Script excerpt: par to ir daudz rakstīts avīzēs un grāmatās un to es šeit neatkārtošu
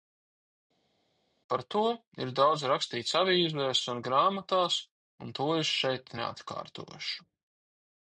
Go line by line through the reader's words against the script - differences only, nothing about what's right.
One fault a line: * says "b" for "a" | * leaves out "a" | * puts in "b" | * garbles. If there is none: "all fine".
all fine